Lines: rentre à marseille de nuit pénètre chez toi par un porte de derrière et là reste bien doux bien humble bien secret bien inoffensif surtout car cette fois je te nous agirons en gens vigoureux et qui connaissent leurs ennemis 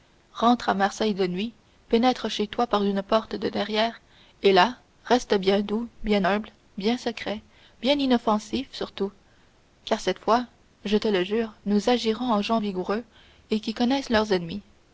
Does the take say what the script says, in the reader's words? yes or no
no